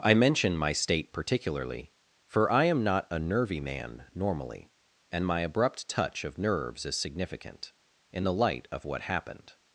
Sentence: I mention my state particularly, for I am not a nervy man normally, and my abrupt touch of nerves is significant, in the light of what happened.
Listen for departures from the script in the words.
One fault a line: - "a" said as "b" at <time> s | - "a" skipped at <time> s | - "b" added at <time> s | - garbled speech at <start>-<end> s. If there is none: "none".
none